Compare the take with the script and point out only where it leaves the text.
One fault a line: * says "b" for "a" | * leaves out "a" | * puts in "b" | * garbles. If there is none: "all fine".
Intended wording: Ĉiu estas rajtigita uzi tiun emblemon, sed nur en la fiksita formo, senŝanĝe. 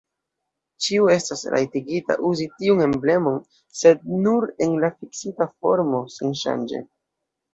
all fine